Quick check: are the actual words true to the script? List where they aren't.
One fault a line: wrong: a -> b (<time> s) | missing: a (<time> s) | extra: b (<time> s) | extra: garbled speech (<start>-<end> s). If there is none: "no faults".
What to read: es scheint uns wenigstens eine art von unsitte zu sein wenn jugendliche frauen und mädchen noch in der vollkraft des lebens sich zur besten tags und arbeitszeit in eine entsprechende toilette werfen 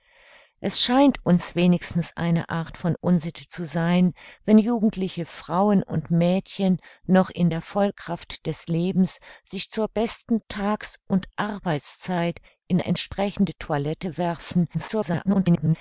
missing: eine (12.8 s)
extra: garbled speech (14.7-15.8 s)